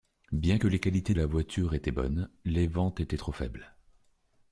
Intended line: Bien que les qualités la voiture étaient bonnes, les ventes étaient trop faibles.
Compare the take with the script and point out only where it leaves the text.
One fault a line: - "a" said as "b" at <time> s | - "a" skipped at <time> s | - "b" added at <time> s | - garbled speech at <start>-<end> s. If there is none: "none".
none